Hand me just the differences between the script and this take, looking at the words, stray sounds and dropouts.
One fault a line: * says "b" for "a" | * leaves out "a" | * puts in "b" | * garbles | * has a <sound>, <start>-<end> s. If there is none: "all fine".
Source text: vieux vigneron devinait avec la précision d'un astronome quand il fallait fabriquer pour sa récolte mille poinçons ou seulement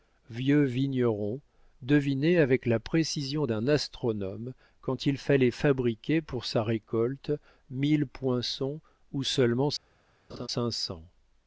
* has a laugh, 10.3-10.5 s